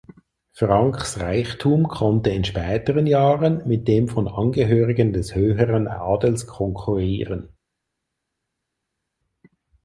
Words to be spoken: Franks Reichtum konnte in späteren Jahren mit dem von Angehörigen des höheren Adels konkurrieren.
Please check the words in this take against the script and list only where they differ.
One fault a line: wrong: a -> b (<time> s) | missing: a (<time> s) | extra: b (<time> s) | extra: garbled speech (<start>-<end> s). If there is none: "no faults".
no faults